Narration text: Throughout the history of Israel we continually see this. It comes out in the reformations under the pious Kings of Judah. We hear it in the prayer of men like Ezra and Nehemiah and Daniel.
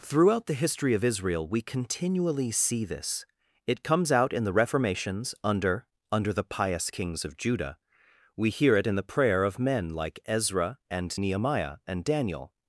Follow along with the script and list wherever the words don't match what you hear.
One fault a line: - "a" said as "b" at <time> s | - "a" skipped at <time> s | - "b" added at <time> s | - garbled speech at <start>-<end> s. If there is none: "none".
- "under" added at 6.1 s